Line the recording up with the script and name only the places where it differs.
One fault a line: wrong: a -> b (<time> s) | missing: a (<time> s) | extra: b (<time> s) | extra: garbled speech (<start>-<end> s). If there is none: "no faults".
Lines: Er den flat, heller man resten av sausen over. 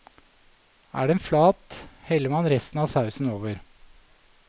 no faults